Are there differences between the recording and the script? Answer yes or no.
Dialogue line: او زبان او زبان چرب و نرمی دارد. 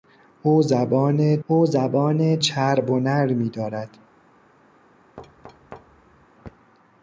no